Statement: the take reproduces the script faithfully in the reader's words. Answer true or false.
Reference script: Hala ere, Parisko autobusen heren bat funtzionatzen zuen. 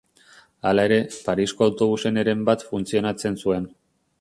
true